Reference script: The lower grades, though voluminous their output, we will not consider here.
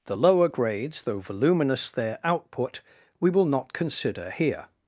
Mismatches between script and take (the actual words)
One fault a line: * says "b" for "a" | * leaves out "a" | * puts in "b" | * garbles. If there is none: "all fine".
all fine